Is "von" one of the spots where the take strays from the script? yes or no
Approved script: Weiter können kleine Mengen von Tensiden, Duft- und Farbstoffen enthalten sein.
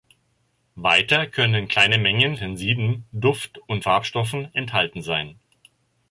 yes